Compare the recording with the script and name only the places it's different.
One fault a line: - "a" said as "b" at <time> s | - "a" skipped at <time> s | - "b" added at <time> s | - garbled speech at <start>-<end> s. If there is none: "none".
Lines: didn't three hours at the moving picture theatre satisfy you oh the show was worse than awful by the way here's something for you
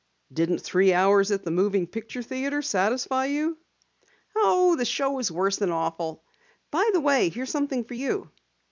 none